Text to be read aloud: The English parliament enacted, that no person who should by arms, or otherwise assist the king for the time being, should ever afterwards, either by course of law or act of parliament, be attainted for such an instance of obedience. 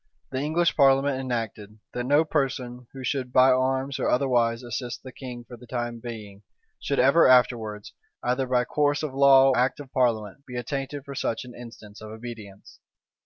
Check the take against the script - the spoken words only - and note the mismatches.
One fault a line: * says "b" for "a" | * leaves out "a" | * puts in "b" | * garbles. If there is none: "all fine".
* leaves out "or"